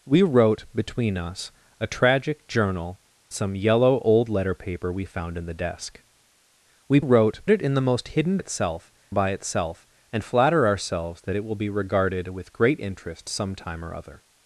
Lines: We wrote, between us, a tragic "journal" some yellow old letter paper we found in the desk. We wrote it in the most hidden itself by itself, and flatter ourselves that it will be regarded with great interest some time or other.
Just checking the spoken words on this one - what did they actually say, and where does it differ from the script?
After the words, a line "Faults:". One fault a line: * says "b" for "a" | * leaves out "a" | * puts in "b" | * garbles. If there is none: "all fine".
We wrote, between us, a tragic "journal" some yellow old letter paper we found in the desk. We wrote it in the most hidden itself by itself, and flatter ourselves that it will be regarded with great interest some time or other.
Faults:
all fine